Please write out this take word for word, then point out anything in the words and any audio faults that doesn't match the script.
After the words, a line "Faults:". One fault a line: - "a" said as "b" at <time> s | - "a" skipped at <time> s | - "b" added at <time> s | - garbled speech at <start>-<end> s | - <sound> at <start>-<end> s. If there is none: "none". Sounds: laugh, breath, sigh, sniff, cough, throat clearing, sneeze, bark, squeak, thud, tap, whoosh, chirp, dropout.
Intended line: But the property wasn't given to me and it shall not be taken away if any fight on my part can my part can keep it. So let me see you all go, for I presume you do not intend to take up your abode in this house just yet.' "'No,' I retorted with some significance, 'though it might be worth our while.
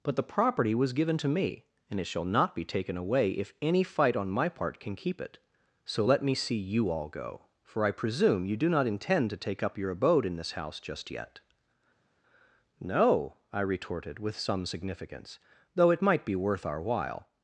But the property was given to me and it shall not be taken away if any fight on my part can keep it. So let me see you all go, for I presume you do not intend to take up your abode in this house just yet.' "'No,' I retorted with some significance, 'though it might be worth our while.
Faults:
- "wasn't" said as "was" at 0.8 s
- "my part can" skipped at 5.0 s